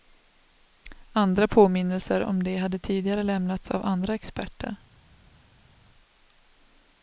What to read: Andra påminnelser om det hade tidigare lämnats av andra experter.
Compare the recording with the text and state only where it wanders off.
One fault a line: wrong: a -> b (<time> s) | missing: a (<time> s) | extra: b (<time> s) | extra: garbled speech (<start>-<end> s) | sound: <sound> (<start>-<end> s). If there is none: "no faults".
no faults